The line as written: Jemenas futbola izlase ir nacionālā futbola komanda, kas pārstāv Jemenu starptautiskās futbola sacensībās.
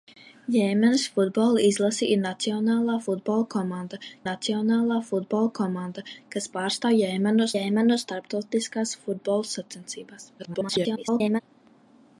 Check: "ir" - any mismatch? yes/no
no